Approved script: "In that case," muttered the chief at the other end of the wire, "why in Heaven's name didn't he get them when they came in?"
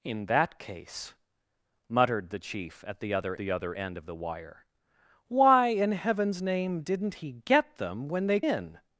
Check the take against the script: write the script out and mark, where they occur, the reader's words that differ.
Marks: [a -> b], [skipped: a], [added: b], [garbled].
"In that case," muttered the chief at the other [added: the other] end of the wire, "why in Heaven's name didn't he get them when they [skipped: came] in?"